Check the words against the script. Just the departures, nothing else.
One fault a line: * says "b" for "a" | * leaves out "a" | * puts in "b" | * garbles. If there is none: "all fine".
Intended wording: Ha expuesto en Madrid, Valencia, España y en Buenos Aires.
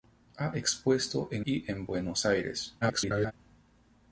* leaves out "Madrid Valencia España"
* garbles